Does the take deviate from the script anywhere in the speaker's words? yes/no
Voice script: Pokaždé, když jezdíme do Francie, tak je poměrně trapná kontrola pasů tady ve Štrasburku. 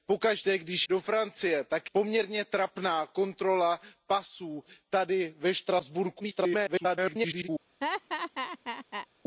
yes